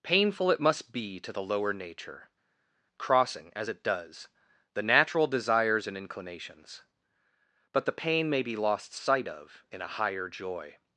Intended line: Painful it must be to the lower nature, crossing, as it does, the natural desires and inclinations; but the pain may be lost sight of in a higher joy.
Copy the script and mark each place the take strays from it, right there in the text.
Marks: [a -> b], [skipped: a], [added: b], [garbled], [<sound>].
Painful it must be to the lower nature, crossing, as it does, the natural desires and inclinations; but the pain may be lost sight of in a higher joy.